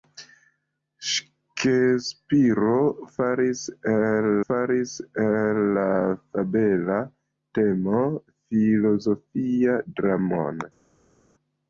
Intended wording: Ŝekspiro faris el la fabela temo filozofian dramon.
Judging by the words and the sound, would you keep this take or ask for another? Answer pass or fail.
fail